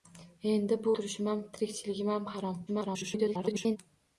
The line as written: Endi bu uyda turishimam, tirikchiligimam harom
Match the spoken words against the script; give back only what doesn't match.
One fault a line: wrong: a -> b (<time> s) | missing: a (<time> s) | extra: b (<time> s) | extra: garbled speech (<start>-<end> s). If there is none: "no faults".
missing: uyda (0.9 s)
extra: garbled speech (2.7-3.8 s)